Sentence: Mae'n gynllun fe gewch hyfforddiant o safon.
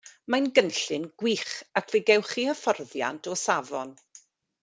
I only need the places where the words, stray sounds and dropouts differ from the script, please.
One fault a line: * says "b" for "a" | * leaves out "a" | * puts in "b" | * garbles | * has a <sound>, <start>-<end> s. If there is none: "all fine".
* puts in "gwych ac"
* puts in "chi"